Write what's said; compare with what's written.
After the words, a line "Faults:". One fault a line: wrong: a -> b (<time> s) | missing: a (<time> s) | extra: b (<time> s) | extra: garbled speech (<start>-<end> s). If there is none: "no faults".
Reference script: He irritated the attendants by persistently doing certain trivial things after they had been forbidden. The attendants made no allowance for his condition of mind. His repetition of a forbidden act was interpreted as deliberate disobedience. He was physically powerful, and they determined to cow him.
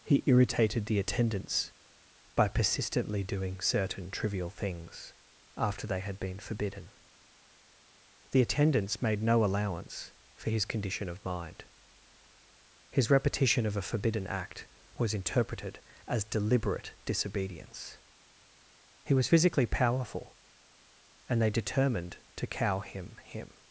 He irritated the attendants by persistently doing certain trivial things after they had been forbidden. The attendants made no allowance for his condition of mind. His repetition of a forbidden act was interpreted as deliberate disobedience. He was physically powerful, and they determined to cow him him.
Faults:
extra: him (23.2 s)